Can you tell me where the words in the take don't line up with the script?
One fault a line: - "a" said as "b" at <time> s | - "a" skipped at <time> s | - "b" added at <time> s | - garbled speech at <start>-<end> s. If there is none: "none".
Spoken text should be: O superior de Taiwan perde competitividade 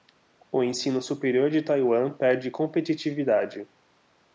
- "ensino" added at 0.6 s